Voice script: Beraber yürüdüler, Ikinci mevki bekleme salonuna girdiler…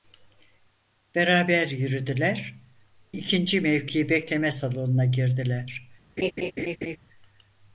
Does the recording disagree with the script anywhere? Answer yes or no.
no